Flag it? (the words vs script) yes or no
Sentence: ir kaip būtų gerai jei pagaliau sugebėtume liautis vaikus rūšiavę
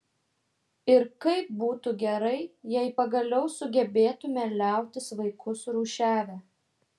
no